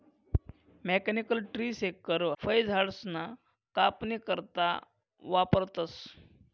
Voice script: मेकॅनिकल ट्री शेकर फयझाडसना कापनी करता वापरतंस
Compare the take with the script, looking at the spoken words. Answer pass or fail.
pass